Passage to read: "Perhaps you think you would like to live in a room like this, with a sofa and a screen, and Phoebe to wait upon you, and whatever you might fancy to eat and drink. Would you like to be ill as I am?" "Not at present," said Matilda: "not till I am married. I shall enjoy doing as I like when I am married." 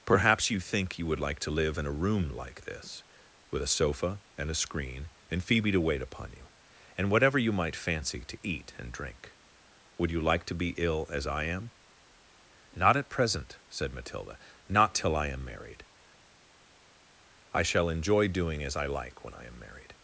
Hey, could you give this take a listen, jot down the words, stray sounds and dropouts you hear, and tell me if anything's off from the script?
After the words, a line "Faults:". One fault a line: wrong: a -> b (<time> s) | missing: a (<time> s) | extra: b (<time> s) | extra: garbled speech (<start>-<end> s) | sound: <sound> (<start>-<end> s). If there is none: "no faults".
"Perhaps you think you would like to live in a room like this, with a sofa and a screen, and Phoebe to wait upon you, and whatever you might fancy to eat and drink. Would you like to be ill as I am?" "Not at present," said Matilda: "not till I am married. I shall enjoy doing as I like when I am married."
Faults:
no faults